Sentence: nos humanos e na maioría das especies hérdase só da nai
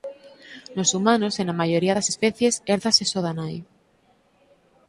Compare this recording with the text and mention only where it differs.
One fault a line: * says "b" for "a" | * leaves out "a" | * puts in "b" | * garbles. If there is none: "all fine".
all fine